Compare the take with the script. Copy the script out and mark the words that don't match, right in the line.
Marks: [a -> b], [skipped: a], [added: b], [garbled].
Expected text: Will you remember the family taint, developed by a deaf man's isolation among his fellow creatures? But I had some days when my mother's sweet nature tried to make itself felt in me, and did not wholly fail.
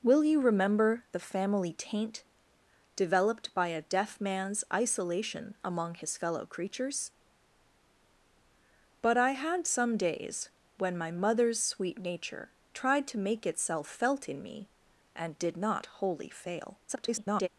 Will you remember the family taint, developed by a deaf man's isolation among his fellow creatures? But I had some days when my mother's sweet nature tried to make itself felt in me, and did not wholly fail. [garbled]